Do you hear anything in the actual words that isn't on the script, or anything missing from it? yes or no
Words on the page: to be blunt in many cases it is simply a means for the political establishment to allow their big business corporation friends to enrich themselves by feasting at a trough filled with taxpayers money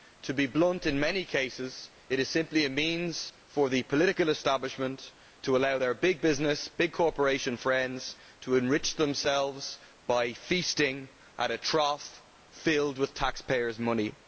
yes